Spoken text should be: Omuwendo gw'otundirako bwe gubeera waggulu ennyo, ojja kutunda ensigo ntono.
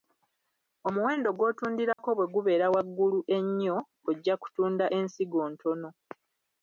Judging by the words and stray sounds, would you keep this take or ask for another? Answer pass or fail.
fail